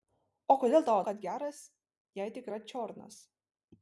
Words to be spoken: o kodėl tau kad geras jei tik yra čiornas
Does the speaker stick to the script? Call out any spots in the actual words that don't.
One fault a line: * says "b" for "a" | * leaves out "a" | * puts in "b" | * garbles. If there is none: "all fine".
all fine